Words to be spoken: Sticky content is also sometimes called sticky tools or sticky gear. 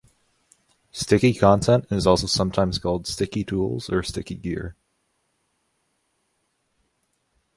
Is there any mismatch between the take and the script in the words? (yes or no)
no